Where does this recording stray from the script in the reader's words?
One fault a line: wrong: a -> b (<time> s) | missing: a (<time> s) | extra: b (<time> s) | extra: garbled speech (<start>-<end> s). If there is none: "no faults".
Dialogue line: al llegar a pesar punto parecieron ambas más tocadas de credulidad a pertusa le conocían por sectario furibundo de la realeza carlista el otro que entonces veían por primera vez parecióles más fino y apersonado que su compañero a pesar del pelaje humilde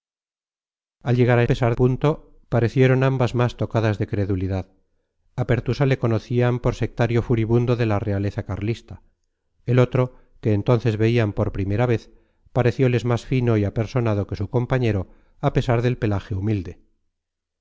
no faults